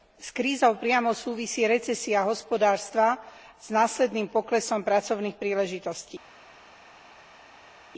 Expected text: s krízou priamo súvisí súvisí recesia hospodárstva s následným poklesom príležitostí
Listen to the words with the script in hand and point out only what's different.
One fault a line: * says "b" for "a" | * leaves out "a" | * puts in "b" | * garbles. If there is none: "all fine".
* leaves out "súvisí"
* puts in "pracovných"